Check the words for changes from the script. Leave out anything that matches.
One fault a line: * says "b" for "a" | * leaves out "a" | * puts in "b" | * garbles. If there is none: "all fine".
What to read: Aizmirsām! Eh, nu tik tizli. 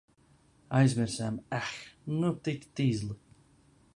all fine